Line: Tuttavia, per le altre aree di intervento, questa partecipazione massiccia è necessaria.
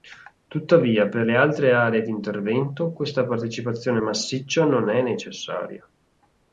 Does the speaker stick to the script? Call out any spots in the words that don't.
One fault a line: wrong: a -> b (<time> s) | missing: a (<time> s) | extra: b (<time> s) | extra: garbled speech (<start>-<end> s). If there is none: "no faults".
extra: non (4.7 s)